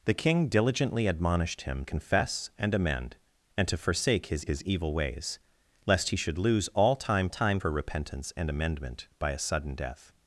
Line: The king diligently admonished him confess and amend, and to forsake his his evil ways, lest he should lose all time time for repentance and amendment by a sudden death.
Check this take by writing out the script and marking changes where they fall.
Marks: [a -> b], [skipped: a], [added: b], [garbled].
The king diligently admonished him confess and amend, and to forsake his his evil ways, lest he should lose all time time for repentance and amendment by a sudden death.